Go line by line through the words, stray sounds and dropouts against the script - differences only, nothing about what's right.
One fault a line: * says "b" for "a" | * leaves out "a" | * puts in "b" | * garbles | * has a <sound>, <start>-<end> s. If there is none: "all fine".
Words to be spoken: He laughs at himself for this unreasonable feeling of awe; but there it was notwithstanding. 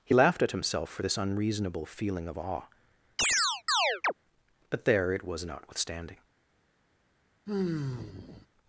* says "laughed" for "laughs"
* has a chirp, 3.2-4.1 s
* has a sigh, 7.5-8.5 s